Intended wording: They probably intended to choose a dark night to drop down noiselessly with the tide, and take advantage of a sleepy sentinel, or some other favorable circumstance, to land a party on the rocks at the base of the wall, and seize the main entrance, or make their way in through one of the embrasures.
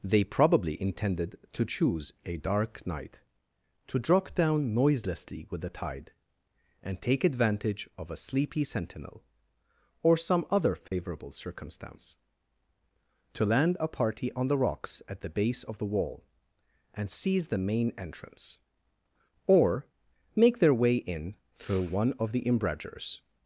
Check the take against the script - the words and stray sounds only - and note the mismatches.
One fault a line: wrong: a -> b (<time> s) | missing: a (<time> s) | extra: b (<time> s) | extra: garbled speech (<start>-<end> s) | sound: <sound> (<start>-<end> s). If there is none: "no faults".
sound: dropout (10.9-10.9 s)